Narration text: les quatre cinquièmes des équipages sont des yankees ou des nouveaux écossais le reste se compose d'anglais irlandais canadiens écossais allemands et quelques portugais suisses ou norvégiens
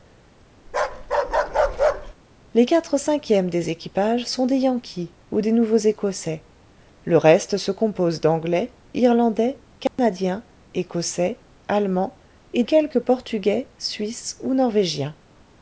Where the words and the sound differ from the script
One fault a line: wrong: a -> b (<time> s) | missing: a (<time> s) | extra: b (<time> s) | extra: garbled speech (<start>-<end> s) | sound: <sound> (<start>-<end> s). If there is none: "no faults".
sound: bark (0.7-2.1 s)
sound: dropout (9.9-10.0 s)